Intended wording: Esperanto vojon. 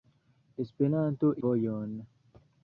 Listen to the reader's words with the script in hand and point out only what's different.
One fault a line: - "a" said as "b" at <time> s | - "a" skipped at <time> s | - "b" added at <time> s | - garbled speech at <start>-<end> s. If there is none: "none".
none